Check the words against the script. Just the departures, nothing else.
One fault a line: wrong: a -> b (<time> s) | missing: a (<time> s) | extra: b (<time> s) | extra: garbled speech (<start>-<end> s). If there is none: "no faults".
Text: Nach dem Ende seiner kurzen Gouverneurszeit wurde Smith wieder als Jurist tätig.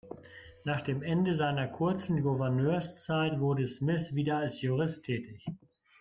no faults